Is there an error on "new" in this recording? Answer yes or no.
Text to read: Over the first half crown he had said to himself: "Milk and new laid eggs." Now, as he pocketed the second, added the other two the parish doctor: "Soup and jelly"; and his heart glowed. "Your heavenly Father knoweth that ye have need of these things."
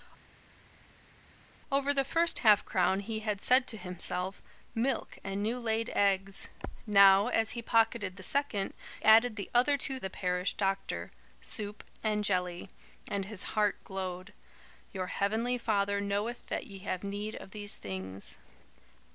no